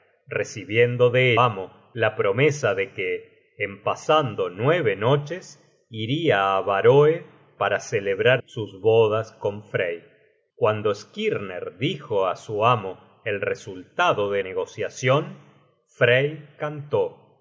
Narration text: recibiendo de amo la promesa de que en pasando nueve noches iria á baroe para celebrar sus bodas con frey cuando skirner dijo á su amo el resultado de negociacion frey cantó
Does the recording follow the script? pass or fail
pass